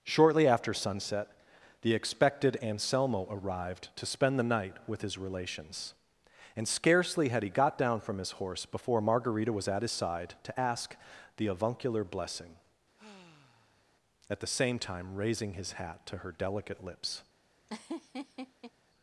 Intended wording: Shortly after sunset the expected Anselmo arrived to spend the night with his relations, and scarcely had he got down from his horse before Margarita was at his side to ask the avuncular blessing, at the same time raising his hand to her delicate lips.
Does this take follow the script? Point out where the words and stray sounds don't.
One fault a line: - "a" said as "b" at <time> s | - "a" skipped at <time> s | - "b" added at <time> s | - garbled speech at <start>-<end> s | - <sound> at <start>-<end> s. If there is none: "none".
- sigh at 13.0-14.0 s
- "hand" said as "hat" at 15.7 s
- laugh at 17.7-18.7 s